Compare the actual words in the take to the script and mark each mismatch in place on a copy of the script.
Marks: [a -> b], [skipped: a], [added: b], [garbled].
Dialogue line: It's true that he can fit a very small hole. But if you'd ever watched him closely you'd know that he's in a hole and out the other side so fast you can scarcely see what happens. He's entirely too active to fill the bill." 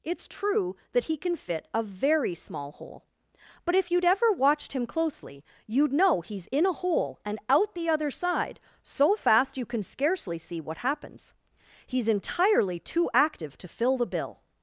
It's true that he can fit a very small hole. But if you'd ever watched him closely you'd know [skipped: that] he's in a hole and out the other side so fast you can scarcely see what happens. He's entirely too active to fill the bill."